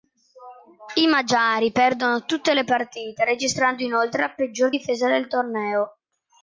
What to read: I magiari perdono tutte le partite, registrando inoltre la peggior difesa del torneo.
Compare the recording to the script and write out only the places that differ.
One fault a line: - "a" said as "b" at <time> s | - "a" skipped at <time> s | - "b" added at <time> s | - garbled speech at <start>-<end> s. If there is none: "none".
none